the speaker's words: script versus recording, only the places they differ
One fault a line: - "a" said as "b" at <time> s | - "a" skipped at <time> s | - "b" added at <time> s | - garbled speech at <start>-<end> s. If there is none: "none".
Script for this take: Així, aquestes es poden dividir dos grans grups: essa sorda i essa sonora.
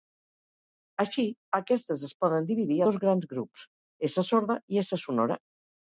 none